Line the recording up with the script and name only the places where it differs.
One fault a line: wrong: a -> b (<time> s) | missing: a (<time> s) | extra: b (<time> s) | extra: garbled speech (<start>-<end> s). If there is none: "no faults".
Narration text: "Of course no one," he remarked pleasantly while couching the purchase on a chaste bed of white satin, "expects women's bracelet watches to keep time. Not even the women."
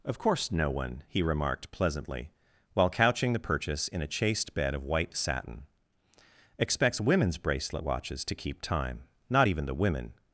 wrong: on -> in (3.9 s)